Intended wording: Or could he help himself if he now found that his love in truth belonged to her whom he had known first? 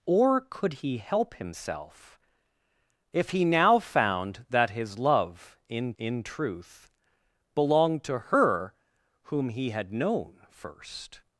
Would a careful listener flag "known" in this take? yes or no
no